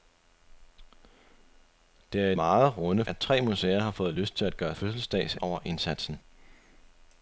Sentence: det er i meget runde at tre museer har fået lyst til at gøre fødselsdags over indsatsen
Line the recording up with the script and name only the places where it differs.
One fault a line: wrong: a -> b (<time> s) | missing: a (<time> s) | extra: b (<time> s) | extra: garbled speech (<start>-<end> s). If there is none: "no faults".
no faults